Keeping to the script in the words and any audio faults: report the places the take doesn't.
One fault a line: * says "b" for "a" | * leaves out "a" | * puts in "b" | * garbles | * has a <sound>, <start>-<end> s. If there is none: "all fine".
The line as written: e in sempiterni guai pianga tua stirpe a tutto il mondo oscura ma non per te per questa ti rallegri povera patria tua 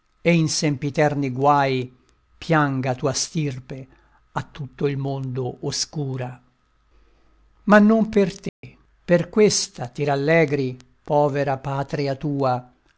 * has a dropout, 8.5-8.6 s